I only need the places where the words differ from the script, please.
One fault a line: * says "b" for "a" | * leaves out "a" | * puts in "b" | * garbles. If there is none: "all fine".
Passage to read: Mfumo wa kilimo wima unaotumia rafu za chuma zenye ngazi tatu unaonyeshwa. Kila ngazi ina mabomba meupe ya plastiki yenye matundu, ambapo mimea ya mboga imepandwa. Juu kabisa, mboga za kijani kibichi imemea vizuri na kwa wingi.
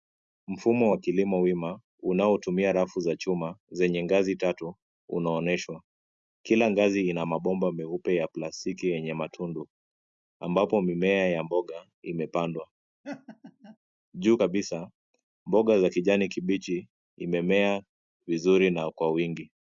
all fine